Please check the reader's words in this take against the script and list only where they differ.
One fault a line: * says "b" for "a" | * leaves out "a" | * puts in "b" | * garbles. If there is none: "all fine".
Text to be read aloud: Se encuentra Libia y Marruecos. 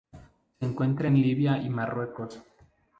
* puts in "en"